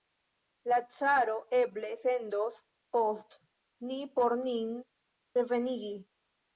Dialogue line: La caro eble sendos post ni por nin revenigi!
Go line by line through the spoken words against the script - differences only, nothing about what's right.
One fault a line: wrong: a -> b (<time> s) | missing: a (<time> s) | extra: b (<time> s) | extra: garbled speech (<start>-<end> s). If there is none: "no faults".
no faults